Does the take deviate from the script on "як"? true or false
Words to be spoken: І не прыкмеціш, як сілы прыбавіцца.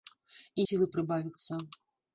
true